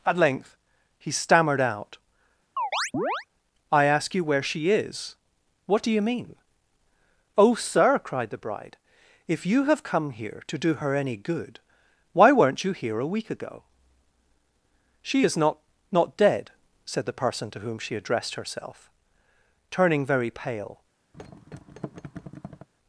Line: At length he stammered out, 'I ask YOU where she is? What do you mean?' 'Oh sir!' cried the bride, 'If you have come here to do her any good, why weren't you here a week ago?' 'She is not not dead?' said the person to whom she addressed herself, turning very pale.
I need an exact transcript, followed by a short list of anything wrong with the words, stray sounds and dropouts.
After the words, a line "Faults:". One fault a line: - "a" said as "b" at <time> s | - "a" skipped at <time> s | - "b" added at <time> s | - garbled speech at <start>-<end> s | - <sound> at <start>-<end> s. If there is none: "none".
At length he stammered out, 'I ask YOU where she is? What do you mean?' 'Oh sir!' cried the bride, 'If you have come here to do her any good, why weren't you here a week ago?' 'She is not not dead?' said the person to whom she addressed herself, turning very pale.
Faults:
- chirp at 2.6-3.3 s
- thud at 21.1-22.7 s